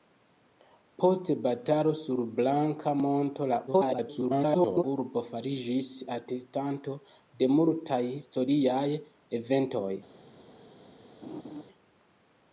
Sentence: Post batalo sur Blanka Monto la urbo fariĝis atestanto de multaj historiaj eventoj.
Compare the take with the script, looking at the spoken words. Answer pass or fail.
fail